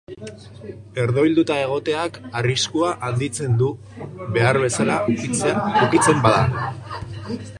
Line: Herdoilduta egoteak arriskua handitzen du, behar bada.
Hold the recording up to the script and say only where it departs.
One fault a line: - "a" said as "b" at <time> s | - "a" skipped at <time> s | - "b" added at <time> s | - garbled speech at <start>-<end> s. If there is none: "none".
- "bezala ukitzen" added at 4.7 s